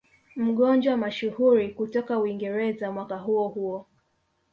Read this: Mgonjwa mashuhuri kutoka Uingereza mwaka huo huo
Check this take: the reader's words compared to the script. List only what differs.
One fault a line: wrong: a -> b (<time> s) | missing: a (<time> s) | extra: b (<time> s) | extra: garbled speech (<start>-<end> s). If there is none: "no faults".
no faults